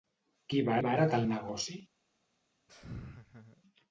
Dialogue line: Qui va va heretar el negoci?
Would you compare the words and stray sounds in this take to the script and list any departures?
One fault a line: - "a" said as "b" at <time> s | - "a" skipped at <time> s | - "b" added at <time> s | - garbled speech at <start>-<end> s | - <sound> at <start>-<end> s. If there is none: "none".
- laugh at 2.7-3.6 s